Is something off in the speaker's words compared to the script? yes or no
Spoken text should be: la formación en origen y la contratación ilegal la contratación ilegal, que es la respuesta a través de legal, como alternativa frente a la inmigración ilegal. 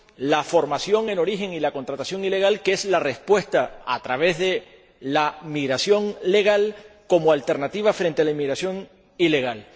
yes